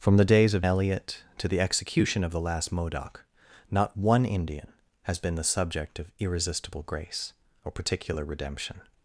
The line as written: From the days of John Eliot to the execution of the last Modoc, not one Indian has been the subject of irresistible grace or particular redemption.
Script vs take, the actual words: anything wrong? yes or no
yes